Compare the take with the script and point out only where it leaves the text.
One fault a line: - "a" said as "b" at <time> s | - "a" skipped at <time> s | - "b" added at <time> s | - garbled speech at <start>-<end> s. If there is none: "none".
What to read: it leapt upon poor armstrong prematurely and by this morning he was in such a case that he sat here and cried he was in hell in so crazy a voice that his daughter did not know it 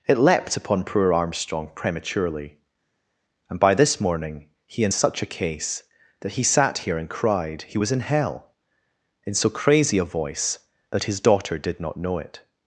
- "was" skipped at 4.8 s